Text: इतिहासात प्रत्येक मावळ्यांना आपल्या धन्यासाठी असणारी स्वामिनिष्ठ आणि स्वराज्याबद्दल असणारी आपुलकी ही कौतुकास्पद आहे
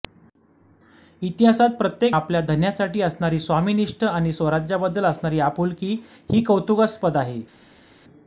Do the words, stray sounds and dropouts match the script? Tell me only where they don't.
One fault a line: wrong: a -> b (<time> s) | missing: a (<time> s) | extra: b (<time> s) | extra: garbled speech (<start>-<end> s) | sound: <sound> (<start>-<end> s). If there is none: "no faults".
missing: मावळ्यांना (2.1 s)